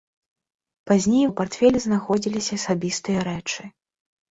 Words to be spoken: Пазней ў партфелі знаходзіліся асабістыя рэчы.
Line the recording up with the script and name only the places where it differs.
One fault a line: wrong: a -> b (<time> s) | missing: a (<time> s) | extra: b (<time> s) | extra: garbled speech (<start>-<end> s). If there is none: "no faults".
no faults